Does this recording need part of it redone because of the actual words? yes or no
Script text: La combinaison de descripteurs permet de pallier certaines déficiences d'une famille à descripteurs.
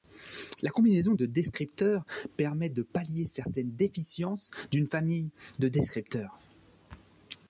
yes